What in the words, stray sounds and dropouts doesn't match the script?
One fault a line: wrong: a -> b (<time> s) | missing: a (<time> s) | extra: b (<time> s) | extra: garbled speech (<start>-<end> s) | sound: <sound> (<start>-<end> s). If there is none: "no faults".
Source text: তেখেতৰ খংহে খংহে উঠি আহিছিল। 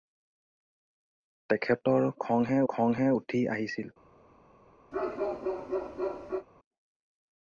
sound: bark (4.9-6.5 s)